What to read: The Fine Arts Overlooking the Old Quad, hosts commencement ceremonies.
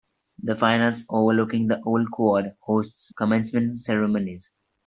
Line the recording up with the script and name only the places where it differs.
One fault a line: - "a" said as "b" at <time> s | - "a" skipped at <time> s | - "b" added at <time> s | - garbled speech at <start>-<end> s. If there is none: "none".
none